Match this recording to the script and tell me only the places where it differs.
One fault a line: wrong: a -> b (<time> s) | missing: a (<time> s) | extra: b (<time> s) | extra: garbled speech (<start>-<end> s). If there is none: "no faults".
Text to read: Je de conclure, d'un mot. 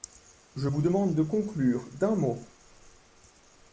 extra: vous demande (0.6 s)